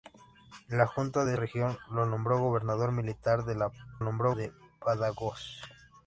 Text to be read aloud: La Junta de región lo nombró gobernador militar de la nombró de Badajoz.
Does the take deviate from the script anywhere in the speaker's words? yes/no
no